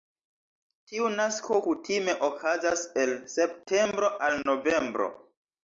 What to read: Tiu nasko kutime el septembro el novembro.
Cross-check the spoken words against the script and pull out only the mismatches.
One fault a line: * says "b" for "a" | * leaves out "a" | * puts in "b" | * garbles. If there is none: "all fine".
* puts in "okazas"
* says "al" for "el"